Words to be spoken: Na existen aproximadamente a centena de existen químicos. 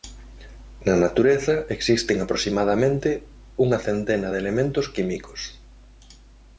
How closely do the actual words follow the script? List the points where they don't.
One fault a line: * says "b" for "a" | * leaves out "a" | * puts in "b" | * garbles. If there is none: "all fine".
* puts in "natureza"
* says "unha" for "a"
* says "elementos" for "existen"